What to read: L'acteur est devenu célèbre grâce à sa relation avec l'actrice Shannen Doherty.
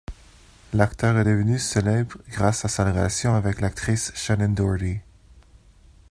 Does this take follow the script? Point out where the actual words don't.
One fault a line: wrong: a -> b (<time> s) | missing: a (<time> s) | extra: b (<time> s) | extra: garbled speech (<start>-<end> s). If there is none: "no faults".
no faults